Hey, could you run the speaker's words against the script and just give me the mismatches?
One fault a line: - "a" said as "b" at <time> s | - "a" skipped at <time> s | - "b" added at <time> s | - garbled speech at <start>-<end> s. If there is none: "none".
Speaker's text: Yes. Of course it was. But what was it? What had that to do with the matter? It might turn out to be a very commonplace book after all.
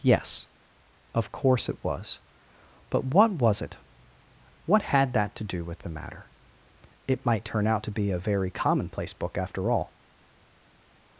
none